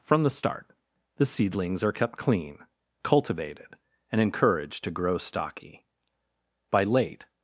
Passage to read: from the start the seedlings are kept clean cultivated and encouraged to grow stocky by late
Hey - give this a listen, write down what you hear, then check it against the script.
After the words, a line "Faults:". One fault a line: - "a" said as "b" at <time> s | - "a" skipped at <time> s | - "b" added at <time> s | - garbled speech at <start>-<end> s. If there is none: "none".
from the start the seedlings are kept clean cultivated and encouraged to grow stocky by late
Faults:
none